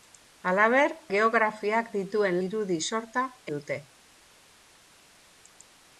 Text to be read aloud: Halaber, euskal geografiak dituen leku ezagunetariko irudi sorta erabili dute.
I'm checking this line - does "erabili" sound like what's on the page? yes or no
no